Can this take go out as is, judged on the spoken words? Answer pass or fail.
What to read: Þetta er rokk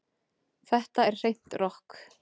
fail